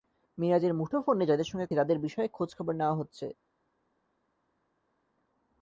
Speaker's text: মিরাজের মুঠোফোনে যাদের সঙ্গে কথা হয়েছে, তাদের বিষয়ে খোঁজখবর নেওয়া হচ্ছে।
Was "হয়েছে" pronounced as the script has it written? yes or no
no